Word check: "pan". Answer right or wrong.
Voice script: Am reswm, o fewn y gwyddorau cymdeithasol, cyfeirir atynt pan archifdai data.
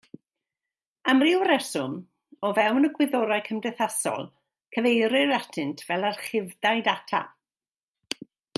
wrong